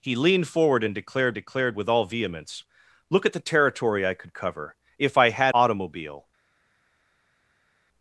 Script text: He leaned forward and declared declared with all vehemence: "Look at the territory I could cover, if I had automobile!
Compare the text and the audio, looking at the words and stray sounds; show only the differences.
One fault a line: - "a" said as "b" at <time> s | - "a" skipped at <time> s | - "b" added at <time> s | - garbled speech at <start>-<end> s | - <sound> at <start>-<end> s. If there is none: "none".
none